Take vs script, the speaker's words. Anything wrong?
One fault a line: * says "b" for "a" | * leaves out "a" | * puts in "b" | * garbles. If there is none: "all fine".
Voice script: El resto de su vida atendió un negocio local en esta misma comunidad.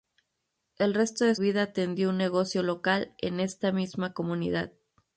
* leaves out "su"